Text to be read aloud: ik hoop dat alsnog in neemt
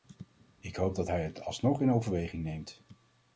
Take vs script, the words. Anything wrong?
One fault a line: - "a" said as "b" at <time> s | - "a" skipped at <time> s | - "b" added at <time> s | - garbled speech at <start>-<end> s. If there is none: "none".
- "hij het" added at 1.0 s
- "overweging" added at 1.9 s